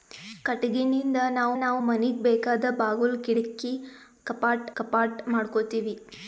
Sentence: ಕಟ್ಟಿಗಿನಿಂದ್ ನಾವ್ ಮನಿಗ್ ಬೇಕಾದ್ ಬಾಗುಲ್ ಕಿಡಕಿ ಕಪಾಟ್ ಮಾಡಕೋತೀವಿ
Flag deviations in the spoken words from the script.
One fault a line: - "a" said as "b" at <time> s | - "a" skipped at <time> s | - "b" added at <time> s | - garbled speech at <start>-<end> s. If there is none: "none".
- "ನಾವ್" added at 1.6 s
- "ಕಪಾಟ್" added at 4.8 s